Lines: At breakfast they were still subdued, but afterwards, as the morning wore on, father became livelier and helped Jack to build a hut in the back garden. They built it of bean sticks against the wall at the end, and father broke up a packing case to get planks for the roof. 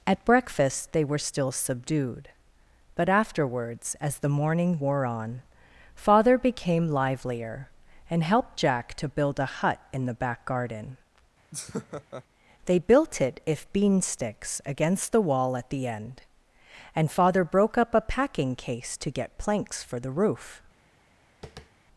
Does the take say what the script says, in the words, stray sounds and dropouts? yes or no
no